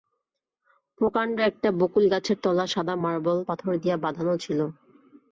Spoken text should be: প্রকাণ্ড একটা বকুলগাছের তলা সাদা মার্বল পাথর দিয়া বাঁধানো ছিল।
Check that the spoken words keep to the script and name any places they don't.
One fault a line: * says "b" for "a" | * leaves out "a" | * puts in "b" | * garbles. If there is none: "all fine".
all fine